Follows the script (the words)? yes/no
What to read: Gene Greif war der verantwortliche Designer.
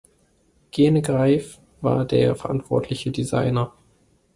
yes